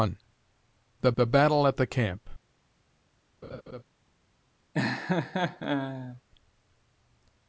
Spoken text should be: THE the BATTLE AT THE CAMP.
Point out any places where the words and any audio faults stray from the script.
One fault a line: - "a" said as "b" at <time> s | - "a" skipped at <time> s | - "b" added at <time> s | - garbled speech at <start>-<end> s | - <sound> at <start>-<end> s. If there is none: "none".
- laugh at 3.4-3.8 s
- laugh at 4.7-6.2 s